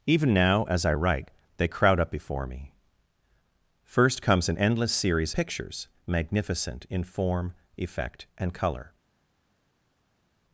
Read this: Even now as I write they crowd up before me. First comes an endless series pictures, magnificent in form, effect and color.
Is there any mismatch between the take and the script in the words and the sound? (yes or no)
no